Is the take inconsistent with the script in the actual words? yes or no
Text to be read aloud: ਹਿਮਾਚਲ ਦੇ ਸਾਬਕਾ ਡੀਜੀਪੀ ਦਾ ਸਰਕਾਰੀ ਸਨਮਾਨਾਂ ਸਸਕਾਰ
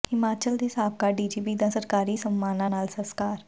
yes